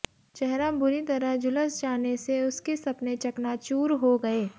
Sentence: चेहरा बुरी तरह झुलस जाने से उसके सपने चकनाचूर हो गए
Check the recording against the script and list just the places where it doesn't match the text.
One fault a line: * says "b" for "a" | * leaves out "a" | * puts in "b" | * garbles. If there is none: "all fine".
all fine